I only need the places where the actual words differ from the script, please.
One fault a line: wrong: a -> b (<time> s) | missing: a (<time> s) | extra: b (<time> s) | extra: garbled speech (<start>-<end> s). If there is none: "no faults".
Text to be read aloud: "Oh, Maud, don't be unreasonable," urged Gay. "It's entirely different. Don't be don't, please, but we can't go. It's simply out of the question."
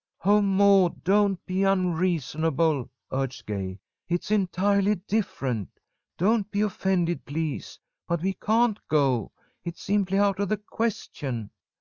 wrong: don't -> offended (6.6 s)